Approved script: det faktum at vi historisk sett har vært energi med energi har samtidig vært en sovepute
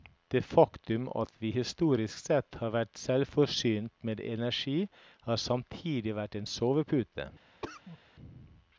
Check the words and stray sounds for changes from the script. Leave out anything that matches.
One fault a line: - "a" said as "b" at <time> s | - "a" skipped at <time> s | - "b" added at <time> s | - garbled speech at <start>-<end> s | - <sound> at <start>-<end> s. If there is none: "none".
- "energi" said as "selvforsynt" at 3.0 s
- cough at 7.6-8.0 s